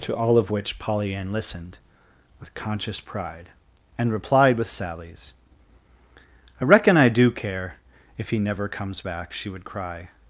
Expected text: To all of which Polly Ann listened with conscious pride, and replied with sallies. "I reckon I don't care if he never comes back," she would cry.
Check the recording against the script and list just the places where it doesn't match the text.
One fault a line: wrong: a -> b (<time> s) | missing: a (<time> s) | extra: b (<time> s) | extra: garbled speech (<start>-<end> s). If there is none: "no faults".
wrong: don't -> do (7.1 s)